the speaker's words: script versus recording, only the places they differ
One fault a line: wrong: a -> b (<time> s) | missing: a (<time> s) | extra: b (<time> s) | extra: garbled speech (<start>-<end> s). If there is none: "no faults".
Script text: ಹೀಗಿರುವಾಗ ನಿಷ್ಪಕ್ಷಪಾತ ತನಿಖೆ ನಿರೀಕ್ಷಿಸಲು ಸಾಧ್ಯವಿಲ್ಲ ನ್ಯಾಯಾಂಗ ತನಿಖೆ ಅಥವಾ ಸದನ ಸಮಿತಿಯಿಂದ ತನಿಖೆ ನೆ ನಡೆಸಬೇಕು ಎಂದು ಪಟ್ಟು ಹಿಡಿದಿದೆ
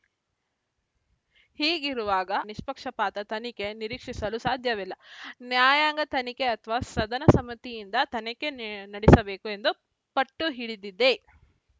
no faults